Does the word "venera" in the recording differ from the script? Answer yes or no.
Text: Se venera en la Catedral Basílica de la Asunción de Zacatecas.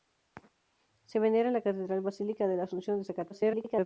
no